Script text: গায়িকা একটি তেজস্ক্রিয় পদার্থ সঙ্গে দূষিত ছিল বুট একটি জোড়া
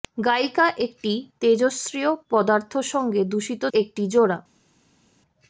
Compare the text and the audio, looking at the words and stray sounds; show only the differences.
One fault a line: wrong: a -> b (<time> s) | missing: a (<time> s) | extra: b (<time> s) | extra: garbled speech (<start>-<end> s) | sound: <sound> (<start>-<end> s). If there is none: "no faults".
missing: ছিল বুট (3.6 s)